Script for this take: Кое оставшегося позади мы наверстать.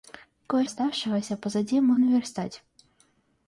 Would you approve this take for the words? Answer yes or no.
yes